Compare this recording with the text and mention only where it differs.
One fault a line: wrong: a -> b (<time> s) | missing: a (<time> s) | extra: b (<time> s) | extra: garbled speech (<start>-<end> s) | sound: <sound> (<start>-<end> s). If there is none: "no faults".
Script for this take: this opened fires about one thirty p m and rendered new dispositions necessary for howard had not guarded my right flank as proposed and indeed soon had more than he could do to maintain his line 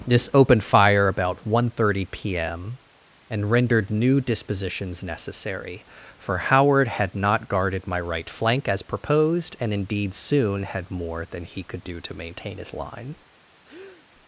wrong: fires -> fire (0.6 s)
sound: breath (13.6-14.1 s)